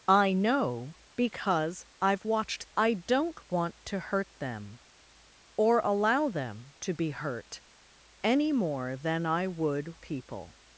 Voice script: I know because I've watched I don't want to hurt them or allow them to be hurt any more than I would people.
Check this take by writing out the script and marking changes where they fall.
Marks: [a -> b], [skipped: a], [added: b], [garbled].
I know because I've watched I don't want to hurt them or allow them to be hurt any more than I would people.